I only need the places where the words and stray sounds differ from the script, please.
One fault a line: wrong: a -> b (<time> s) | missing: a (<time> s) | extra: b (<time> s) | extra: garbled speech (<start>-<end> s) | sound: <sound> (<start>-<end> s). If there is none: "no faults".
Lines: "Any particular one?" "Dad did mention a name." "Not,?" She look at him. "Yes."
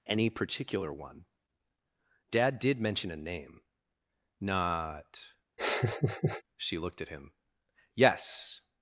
sound: laugh (5.6-6.4 s)
wrong: look -> looked (6.8 s)